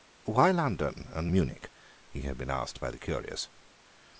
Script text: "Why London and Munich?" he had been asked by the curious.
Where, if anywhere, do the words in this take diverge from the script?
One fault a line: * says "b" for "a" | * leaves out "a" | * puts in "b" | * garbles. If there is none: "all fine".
all fine